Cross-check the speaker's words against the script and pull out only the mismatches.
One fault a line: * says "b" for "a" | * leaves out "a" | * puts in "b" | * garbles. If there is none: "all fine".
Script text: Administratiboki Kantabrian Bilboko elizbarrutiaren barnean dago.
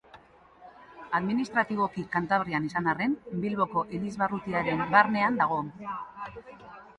* puts in "izan arren"